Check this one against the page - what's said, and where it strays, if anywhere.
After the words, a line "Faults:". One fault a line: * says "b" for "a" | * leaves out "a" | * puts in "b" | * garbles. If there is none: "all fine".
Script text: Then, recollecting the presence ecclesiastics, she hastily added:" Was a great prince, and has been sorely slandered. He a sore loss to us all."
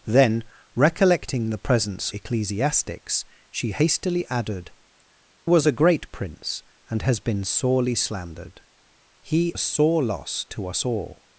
Then, recollecting the presence ecclesiastics, she hastily added:" Was a great prince, and has been sorely slandered. He a sore loss to us all."
Faults:
all fine